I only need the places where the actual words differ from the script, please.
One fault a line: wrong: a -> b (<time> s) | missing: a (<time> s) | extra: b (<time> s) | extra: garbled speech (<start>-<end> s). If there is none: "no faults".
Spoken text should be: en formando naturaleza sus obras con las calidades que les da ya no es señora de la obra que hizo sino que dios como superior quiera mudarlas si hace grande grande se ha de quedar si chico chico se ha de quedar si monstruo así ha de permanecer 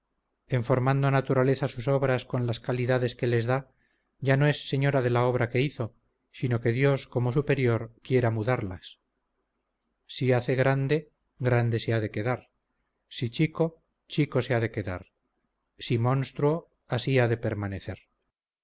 no faults